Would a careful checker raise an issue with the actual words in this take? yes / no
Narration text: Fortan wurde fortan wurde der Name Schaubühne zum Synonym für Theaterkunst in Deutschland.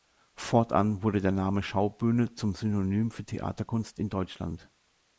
yes